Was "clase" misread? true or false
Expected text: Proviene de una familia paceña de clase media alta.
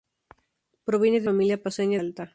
true